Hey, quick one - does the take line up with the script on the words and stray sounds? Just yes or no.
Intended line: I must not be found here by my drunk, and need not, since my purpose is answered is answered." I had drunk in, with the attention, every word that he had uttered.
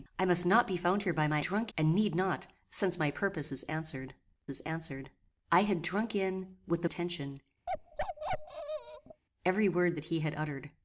no